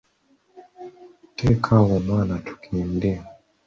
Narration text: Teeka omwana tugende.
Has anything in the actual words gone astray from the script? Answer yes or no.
yes